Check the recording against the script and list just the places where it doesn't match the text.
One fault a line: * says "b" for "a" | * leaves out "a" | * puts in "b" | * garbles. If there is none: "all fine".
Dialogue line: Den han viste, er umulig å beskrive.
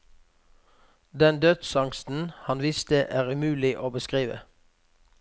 * puts in "dødsangsten"